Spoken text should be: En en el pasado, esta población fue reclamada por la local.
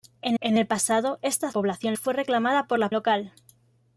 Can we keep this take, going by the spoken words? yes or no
yes